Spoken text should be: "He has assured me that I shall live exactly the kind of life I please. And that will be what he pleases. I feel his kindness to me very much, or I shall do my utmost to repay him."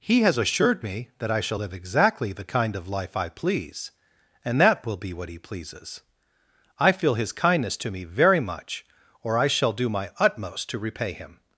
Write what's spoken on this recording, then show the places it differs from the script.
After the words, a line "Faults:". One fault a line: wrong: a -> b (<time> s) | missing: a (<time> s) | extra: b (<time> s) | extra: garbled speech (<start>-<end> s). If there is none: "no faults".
"He has assured me that I shall live exactly the kind of life I please. And that will be what he pleases. I feel his kindness to me very much, or I shall do my utmost to repay him."
Faults:
no faults